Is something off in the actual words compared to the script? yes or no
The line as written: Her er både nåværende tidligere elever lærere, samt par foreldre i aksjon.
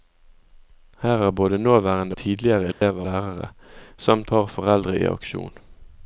no